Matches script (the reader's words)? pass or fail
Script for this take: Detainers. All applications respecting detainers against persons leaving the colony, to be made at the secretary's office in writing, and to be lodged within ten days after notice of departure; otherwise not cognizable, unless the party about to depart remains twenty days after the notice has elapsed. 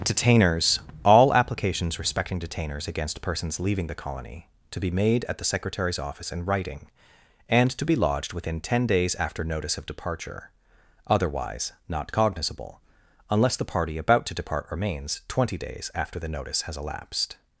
pass